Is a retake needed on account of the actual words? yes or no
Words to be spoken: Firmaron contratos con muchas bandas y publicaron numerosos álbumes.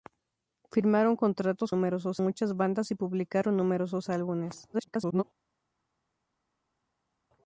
yes